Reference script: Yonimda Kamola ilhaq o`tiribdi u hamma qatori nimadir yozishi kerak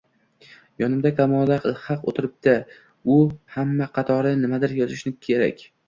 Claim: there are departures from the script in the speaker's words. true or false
false